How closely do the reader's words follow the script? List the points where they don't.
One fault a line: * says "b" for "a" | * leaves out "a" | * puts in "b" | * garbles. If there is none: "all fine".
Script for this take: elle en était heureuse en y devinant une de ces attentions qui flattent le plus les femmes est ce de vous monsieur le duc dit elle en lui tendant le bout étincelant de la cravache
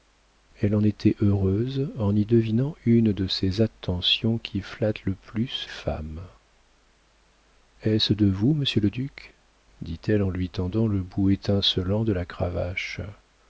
* leaves out "les"